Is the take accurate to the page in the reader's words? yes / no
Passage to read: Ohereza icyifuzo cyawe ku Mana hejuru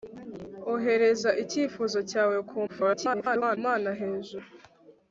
no